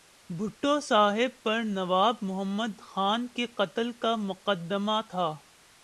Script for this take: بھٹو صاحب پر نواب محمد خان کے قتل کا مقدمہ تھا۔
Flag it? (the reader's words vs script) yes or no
no